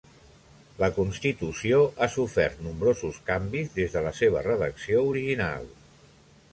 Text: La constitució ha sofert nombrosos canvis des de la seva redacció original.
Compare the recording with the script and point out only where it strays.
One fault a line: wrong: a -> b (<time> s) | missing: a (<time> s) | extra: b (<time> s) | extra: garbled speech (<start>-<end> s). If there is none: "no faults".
no faults